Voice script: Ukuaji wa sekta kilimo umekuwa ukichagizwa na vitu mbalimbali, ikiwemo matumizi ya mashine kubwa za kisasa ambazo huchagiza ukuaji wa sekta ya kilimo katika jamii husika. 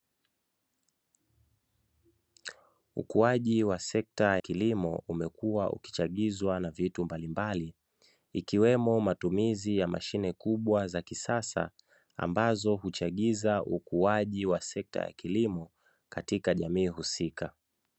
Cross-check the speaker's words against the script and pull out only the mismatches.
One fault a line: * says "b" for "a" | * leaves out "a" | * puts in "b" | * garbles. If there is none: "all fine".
all fine